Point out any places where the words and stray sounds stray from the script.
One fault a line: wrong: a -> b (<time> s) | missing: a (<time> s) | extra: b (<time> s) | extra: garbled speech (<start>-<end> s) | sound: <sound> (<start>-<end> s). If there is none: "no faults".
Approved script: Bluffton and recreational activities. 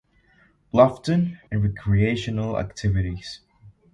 no faults